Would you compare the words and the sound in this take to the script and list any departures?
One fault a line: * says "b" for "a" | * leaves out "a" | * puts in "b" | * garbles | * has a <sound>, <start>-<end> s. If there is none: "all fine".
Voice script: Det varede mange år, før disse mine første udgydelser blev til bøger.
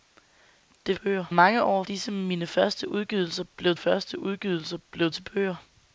* says "bøger" for "varede"
* leaves out "før"
* puts in "første udgydelser blev"